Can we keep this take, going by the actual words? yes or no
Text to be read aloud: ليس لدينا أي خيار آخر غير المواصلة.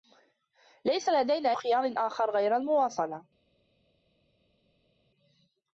no